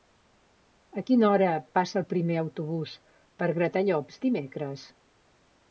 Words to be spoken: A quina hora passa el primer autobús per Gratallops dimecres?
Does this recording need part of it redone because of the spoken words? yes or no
no